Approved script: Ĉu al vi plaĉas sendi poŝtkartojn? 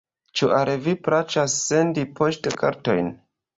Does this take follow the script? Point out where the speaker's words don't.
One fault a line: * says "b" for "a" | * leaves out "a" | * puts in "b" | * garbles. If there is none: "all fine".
all fine